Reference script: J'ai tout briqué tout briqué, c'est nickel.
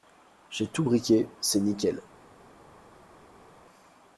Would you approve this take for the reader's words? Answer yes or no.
no